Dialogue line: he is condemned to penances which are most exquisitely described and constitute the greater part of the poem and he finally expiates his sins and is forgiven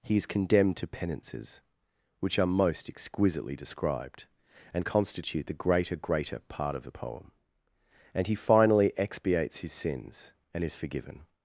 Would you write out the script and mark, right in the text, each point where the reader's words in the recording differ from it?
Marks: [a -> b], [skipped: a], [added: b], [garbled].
he is condemned to penances which are most exquisitely described and constitute the greater [added: greater] part of the poem and he finally expiates his sins and is forgiven